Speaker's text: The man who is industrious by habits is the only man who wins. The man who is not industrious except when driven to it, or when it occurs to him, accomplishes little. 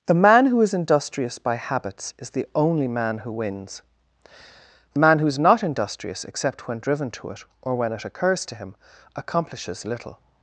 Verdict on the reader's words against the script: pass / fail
pass